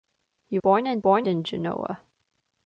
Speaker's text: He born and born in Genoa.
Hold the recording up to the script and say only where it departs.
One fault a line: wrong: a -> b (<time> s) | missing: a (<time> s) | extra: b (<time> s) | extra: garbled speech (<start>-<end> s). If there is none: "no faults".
no faults